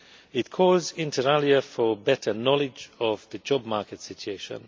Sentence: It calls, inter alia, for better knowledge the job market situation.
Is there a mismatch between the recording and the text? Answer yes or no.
yes